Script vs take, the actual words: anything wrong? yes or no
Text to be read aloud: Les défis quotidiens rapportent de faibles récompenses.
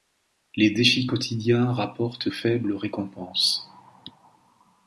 yes